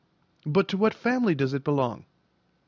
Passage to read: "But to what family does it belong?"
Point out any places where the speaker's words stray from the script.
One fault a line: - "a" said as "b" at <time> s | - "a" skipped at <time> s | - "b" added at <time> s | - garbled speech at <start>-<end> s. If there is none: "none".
none